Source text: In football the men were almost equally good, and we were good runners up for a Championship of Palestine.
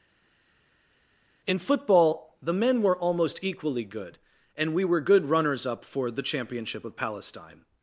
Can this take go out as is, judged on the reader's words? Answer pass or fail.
fail